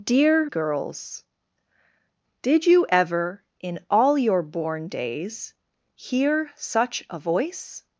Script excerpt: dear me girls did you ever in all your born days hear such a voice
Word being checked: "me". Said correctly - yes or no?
no